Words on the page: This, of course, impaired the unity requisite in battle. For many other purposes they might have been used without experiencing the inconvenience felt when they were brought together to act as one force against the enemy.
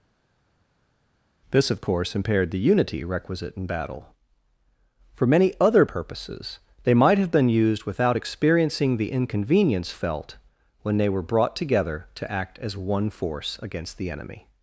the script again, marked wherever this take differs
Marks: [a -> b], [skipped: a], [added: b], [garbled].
This, of course, impaired the unity requisite in battle. For many other purposes they might have been used without experiencing the inconvenience felt when they were brought together to act as one force against the enemy.